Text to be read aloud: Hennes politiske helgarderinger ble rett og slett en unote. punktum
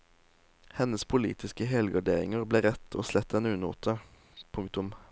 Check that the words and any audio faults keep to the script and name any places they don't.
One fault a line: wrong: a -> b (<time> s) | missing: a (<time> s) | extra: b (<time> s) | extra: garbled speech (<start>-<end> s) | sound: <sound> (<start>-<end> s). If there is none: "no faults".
no faults